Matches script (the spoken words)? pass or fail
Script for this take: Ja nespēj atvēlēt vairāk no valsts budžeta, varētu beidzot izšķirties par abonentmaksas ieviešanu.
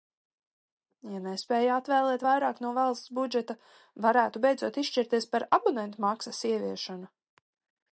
pass